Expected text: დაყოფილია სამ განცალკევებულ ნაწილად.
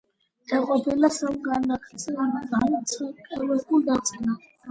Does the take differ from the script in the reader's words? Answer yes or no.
no